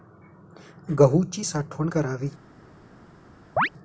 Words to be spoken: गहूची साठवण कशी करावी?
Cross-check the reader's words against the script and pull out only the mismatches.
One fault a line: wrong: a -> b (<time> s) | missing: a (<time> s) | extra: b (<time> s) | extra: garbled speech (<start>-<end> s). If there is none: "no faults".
missing: कशी (1.9 s)